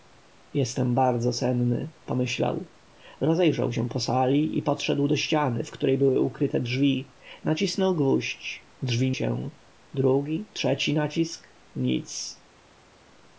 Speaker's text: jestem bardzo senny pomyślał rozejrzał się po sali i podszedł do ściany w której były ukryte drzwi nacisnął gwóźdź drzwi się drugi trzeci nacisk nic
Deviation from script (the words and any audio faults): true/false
false